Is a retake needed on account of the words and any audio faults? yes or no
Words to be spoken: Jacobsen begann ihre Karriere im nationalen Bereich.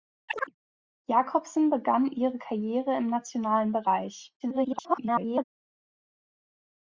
yes